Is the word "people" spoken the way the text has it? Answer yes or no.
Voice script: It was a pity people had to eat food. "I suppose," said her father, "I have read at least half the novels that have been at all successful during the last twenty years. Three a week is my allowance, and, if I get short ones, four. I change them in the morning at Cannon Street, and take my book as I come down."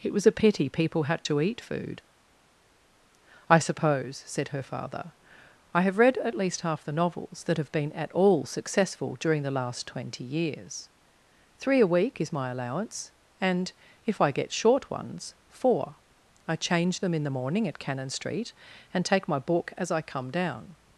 yes